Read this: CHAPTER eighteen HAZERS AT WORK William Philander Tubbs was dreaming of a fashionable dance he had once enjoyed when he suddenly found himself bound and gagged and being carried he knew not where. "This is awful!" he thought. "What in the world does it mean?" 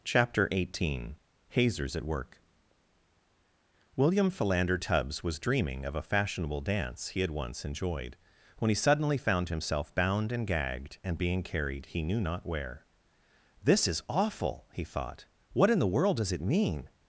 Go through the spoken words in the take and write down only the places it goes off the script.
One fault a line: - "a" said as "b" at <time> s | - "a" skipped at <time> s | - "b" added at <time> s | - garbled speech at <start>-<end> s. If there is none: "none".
none